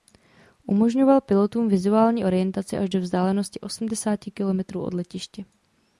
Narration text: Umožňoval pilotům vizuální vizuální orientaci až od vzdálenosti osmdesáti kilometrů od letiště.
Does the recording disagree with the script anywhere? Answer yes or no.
yes